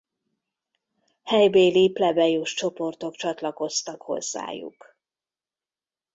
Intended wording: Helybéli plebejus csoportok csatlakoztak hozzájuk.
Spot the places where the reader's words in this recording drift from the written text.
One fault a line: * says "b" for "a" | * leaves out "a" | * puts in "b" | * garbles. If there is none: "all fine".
all fine